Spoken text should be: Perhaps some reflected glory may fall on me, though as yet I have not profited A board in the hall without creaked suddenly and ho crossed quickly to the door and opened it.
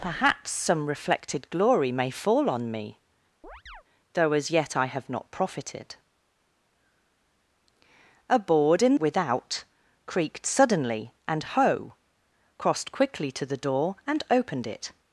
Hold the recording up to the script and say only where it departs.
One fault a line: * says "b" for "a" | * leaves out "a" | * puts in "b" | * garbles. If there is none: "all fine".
* leaves out "the hall"